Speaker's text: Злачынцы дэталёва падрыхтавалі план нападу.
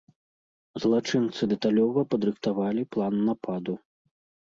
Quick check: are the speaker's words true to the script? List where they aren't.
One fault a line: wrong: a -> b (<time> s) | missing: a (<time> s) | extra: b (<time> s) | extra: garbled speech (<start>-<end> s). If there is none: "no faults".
no faults